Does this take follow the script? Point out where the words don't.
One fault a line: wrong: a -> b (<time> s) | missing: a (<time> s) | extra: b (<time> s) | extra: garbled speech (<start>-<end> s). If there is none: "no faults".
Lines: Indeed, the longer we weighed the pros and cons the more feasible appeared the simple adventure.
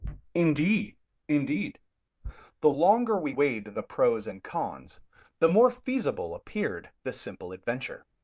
extra: indeed (1.3 s)